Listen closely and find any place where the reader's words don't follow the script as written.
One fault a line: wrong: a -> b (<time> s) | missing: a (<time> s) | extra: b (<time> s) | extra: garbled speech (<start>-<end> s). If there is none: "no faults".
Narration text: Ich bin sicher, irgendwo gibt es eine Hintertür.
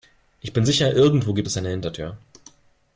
no faults